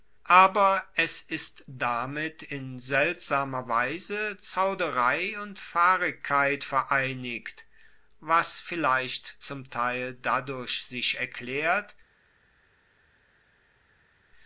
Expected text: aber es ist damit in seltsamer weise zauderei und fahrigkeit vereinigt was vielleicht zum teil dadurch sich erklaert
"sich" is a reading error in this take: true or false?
false